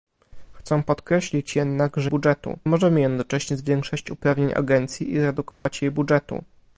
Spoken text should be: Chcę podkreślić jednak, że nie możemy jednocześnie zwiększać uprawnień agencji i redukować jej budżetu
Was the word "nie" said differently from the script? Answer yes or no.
yes